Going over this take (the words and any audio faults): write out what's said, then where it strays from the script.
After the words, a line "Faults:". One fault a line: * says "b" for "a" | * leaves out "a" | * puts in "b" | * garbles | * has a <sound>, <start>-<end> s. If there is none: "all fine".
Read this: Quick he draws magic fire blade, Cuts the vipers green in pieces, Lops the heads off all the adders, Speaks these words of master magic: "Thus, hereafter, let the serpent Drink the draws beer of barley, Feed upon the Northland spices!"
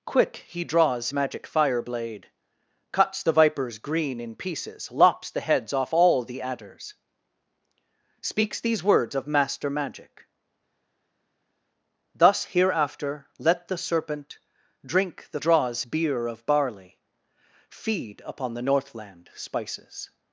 Quick he draws magic fire blade, Cuts the vipers green in pieces, Lops the heads off all the adders, Speaks these words of master magic: "Thus, hereafter, let the serpent Drink the draws beer of barley, Feed upon the Northland spices!"
Faults:
all fine